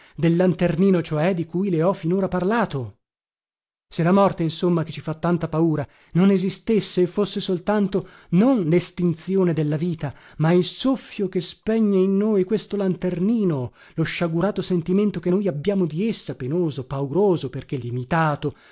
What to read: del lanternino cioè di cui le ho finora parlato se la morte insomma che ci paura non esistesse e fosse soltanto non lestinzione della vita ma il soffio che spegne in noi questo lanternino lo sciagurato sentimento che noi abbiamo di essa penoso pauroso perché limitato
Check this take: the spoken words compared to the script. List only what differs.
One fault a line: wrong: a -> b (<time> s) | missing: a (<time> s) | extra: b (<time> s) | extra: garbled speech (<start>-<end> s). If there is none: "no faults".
extra: fa tanta (5.0 s)